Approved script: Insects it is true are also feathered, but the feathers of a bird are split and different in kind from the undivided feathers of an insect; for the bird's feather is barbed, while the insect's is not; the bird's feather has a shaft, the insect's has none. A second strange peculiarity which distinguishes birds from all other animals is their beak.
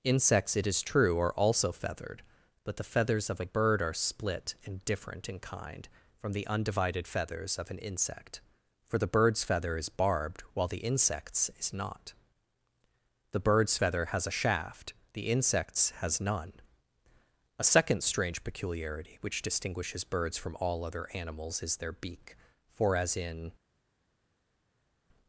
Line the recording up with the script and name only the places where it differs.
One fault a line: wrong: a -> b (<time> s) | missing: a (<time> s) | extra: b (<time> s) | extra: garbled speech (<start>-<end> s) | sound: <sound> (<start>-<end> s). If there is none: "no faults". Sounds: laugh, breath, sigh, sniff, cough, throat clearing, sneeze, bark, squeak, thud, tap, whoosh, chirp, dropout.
extra: For as in (22.7 s)